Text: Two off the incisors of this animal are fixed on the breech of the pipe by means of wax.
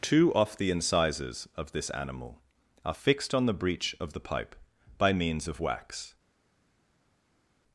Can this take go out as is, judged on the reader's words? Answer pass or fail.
pass